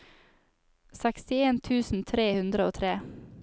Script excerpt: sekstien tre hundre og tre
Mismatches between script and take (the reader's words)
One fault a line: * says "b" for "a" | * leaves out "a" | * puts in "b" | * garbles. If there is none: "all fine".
* puts in "tusen"